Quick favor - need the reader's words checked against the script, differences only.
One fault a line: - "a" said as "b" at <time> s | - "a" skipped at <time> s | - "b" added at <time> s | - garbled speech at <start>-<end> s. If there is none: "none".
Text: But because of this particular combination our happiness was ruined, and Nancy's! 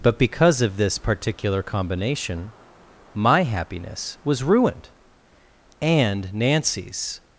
- "our" said as "my" at 3.2 s